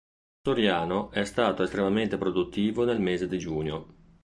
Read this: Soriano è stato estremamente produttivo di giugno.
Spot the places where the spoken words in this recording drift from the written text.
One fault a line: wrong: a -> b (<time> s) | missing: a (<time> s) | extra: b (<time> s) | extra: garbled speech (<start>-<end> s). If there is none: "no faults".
extra: nel mese (2.9 s)